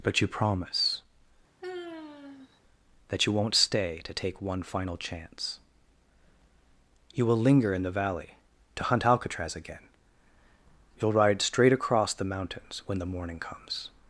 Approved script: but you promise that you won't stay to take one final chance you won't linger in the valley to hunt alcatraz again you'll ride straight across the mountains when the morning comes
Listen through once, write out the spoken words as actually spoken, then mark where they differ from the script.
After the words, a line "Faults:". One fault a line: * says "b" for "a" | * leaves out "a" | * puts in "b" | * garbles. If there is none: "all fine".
but you promise that you won't stay to take one final chance you will linger in the valley to hunt alcatraz again you'll ride straight across the mountains when the morning comes
Faults:
* says "will" for "won't"